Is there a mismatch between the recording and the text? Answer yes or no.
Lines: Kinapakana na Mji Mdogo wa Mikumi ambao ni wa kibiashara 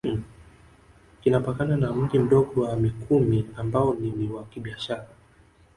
yes